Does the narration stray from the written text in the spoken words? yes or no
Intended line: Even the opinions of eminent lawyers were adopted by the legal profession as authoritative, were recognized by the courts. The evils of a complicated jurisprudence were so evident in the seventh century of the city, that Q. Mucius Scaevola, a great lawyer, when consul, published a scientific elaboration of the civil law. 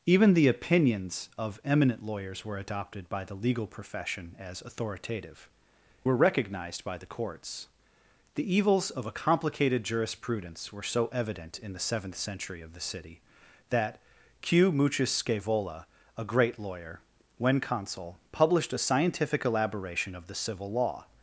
no